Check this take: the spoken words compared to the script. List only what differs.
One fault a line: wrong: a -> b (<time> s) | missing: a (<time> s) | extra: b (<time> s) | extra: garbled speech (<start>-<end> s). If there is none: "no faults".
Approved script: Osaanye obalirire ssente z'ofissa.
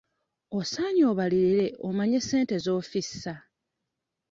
extra: omanye (1.9 s)